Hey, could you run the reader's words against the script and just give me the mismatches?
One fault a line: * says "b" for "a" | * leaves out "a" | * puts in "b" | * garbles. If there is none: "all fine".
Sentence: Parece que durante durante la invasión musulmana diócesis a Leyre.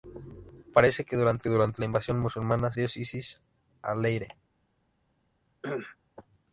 all fine